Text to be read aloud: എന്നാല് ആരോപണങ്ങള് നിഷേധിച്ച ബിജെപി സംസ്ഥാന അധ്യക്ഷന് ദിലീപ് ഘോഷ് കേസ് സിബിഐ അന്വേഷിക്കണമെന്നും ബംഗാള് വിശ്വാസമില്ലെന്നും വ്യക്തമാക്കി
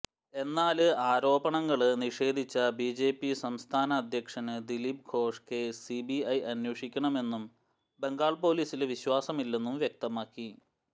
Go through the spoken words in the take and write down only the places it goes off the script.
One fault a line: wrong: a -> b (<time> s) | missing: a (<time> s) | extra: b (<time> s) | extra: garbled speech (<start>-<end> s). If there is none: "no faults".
extra: പോലീസില് (8.4 s)